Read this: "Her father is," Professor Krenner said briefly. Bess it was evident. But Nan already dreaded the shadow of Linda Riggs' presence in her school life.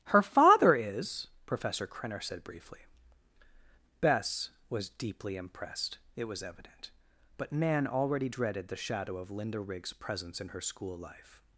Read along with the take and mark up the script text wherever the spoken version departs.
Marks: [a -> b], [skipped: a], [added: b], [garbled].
"Her father is," Professor Krenner said briefly. Bess [added: was deeply impressed] it was evident. But Nan already dreaded the shadow of Linda Riggs' presence in her school life.